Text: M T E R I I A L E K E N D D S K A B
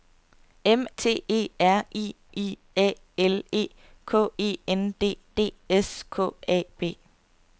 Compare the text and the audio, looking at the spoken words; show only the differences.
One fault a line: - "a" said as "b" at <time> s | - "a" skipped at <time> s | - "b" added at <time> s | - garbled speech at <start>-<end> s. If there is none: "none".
none